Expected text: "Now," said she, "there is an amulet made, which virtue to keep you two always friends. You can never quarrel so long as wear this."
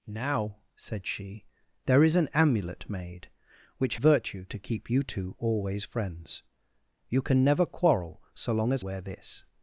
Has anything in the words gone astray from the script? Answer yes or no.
no